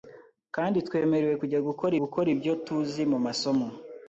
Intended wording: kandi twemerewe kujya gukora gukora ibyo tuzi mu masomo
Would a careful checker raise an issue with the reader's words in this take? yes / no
no